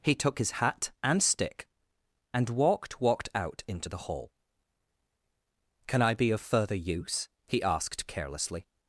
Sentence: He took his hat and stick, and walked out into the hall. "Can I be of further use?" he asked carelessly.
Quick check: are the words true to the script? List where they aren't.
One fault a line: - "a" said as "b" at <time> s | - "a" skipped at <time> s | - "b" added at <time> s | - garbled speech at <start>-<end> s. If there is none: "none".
- "walked" added at 3.0 s